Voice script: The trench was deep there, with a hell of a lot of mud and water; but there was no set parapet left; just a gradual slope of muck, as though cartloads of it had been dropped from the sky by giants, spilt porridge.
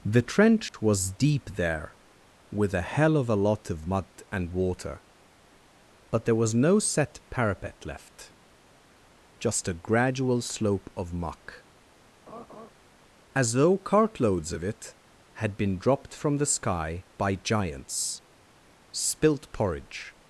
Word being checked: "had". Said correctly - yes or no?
yes